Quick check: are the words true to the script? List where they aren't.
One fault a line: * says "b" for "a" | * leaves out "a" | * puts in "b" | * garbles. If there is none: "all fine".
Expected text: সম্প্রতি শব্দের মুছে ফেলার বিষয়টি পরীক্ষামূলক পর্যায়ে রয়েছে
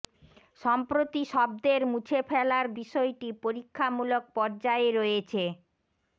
all fine